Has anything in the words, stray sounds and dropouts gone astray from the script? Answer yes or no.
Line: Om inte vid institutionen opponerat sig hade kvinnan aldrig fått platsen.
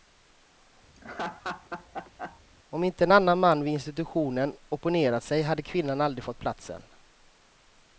yes